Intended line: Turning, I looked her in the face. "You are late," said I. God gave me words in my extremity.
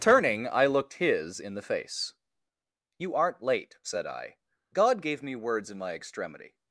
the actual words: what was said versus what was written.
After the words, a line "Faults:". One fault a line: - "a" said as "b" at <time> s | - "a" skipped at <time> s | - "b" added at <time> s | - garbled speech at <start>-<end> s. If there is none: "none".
Turning, I looked his in the face. "You aren't late," said I. God gave me words in my extremity.
Faults:
- "her" said as "his" at 0.9 s
- "are" said as "aren't" at 3.2 s